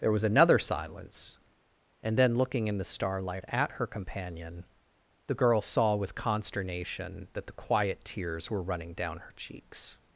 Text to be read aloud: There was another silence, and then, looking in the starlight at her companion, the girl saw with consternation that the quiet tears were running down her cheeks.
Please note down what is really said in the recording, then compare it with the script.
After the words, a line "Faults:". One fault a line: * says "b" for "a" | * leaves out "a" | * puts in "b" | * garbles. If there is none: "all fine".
There was another silence, and then, looking in the starlight at her companion, the girl saw with consternation that the quiet tears were running down her cheeks.
Faults:
all fine